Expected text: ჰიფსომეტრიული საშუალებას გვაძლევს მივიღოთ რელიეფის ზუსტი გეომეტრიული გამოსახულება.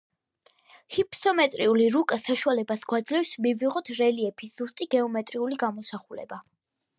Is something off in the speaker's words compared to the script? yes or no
yes